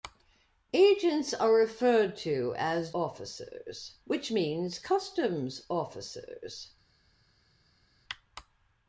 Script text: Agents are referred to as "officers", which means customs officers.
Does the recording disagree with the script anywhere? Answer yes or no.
no